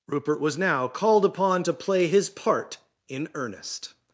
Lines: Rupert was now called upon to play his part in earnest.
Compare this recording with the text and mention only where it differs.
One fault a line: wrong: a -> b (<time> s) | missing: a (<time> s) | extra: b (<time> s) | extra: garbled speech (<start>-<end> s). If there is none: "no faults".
no faults